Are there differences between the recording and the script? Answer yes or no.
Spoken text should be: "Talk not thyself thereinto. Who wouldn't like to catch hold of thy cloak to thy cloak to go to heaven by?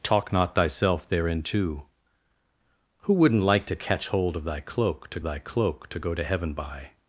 no